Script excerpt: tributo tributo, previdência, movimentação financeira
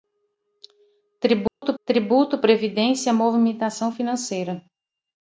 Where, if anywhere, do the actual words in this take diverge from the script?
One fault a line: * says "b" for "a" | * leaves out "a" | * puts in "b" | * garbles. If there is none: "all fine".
all fine